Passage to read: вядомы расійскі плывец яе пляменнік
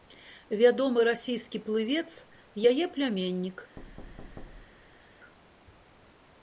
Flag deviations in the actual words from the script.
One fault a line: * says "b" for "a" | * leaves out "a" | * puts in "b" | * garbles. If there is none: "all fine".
all fine